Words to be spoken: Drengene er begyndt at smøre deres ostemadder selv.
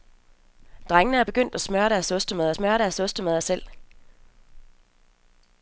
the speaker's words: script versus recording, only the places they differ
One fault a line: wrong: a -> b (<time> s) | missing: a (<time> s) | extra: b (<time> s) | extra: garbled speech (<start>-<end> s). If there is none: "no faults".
extra: smøre deres ostemadder (2.5 s)